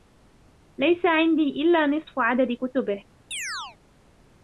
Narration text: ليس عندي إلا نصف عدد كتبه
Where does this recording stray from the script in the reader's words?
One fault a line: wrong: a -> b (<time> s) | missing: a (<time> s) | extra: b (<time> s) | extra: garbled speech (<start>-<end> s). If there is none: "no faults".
no faults